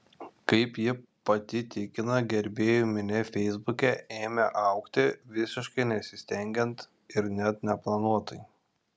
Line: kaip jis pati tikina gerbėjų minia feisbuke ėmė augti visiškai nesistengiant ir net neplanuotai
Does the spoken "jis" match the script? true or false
false